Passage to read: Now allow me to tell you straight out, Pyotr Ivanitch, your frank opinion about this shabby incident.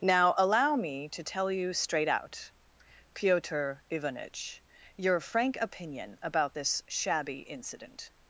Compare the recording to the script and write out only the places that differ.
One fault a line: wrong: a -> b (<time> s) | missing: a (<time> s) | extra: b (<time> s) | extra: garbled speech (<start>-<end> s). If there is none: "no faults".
no faults